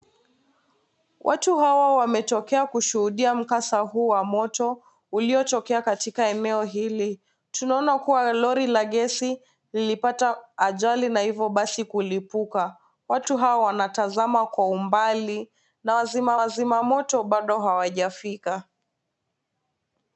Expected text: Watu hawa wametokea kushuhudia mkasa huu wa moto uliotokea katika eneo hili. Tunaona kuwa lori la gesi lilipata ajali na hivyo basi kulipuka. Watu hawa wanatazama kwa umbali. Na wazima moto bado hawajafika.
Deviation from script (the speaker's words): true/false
true